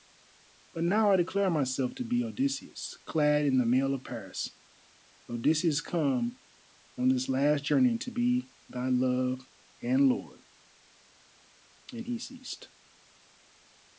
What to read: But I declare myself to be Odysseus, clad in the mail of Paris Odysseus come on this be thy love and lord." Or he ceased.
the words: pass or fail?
fail